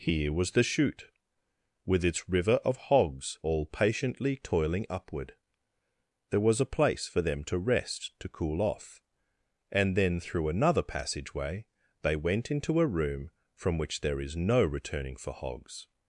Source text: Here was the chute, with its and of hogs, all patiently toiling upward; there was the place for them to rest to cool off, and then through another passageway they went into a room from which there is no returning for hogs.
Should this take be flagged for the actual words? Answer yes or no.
yes